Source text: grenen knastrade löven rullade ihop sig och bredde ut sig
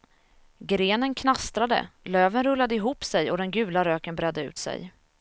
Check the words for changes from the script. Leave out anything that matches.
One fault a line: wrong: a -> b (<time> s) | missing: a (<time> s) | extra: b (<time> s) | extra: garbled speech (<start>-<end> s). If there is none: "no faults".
extra: den gula röken (3.4 s)